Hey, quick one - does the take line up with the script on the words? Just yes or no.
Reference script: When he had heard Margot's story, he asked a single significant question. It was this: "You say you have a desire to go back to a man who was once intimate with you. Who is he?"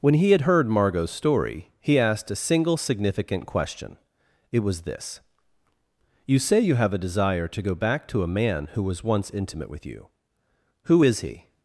yes